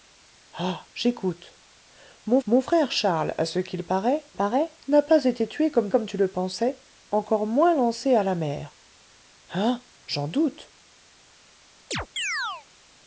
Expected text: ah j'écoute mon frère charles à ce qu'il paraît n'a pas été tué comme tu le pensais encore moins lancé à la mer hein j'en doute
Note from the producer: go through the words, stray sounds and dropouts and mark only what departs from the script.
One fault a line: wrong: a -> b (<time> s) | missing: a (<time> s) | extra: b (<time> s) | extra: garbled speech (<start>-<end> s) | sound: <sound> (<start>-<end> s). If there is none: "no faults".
extra: mon (2.5 s)
extra: paraît (4.3 s)
extra: comme (5.9 s)
sound: chirp (11.9-12.7 s)